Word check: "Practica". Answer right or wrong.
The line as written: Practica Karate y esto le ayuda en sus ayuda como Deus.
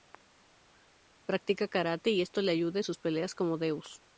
right